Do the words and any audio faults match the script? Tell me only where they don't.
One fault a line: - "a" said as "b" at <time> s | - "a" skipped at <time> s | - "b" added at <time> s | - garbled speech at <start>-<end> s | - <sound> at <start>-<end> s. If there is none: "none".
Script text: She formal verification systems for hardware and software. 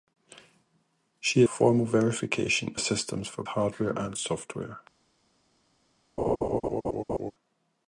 - laugh at 6.2-7.3 s